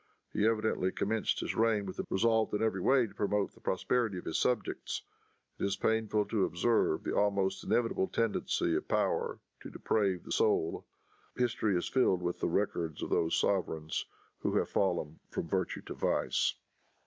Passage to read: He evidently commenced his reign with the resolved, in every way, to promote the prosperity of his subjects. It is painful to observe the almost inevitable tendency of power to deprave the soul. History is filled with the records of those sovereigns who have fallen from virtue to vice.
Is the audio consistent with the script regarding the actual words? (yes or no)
yes